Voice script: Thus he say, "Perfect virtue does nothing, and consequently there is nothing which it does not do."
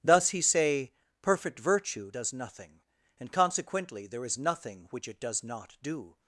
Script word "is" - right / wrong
right